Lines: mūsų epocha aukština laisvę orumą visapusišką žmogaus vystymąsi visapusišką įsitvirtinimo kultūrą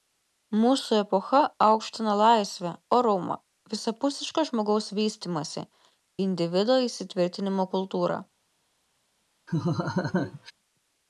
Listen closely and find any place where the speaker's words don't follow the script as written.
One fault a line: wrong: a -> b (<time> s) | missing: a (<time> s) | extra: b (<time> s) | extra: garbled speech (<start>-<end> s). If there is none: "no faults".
wrong: visapusišką -> individo (6.3 s)